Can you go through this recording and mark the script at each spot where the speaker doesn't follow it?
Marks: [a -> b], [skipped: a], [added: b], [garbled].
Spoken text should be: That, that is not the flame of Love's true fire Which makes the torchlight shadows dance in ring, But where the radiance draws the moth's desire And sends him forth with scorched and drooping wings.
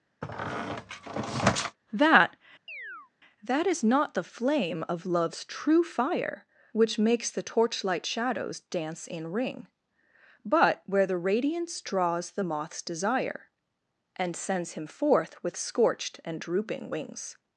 That, that is not the flame of Love's true fire Which makes the torchlight shadows dance in ring, But where the radiance draws the moth's desire And sends him forth with scorched and drooping wings.